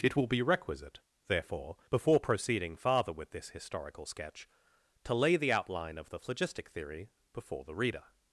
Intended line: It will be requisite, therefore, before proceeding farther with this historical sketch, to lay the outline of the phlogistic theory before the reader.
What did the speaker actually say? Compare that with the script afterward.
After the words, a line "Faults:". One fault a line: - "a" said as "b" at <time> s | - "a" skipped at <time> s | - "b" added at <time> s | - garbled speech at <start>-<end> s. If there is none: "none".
It will be requisite, therefore, before proceeding farther with this historical sketch, to lay the outline of the phlogistic theory before the reader.
Faults:
none